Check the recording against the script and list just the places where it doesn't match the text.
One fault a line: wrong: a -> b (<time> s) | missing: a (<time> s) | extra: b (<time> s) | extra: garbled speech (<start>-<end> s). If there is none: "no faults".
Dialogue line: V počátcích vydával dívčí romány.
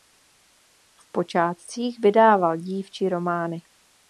no faults